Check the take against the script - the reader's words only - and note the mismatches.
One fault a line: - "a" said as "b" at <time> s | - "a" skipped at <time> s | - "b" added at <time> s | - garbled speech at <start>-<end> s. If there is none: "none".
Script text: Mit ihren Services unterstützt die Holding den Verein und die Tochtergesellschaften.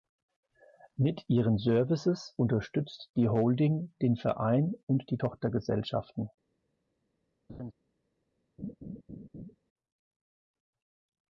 none